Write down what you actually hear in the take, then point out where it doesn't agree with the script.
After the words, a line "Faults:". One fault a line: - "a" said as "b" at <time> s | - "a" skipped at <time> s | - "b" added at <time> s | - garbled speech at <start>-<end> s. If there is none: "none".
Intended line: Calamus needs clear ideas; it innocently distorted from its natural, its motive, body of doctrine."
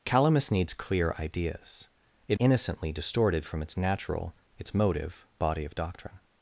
Calamus needs clear ideas; it innocently distorted from its natural, its motive, body of doctrine."
Faults:
none